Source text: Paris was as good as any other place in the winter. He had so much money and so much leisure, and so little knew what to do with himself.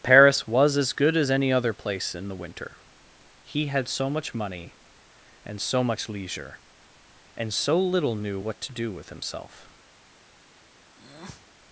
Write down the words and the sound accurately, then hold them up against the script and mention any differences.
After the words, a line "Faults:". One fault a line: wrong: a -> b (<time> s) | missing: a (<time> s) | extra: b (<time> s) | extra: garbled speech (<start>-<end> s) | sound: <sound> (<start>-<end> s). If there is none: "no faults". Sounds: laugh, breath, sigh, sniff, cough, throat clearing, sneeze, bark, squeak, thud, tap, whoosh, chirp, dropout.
Paris was as good as any other place in the winter. He had so much money and so much leisure, and so little knew what to do with himself.
Faults:
sound: breath (10.9-11.5 s)